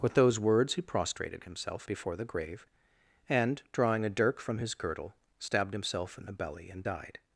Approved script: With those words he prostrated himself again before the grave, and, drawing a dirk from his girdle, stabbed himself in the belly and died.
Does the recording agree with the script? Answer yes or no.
no